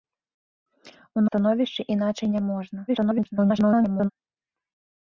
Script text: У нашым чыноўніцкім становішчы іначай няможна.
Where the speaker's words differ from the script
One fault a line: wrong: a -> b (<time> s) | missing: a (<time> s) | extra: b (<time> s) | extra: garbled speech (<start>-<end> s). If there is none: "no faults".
missing: нашым чыноўніцкім (1.2 s)
extra: garbled speech (2.9-4.1 s)